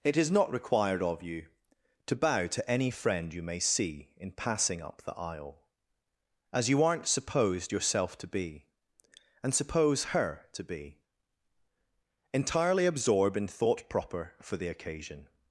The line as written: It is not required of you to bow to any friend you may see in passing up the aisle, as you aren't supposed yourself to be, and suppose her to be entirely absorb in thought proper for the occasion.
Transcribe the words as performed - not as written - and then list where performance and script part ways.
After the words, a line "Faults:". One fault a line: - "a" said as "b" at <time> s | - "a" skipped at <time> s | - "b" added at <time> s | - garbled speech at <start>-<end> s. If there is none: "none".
It is not required of you to bow to any friend you may see in passing up the aisle, as you aren't supposed yourself to be, and suppose her to be entirely absorb in thought proper for the occasion.
Faults:
none